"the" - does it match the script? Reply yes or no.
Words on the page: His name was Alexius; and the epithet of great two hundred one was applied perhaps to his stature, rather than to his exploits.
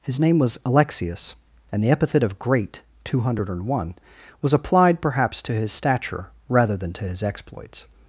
yes